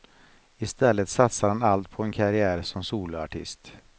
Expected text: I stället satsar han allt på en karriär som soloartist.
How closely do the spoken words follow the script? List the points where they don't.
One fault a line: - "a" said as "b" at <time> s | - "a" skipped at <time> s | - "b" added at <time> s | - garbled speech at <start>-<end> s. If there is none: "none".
none